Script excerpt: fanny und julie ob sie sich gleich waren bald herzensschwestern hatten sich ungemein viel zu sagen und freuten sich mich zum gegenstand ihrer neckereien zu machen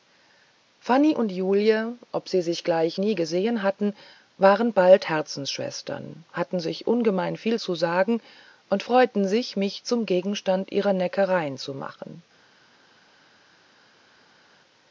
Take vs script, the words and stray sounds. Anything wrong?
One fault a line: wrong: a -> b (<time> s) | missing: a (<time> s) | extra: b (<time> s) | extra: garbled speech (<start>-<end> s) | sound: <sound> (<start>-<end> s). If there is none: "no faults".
extra: nie gesehen hatten (3.0 s)